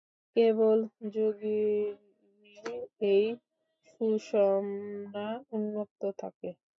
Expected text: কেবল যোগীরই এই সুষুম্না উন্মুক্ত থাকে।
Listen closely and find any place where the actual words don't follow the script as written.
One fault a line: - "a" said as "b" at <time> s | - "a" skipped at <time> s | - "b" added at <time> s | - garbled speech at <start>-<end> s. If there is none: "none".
none